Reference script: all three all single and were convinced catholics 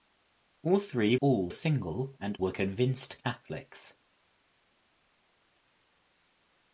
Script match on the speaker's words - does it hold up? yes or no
yes